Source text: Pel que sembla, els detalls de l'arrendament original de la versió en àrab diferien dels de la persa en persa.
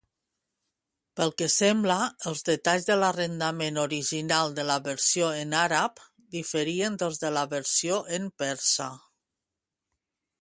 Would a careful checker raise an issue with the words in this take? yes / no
yes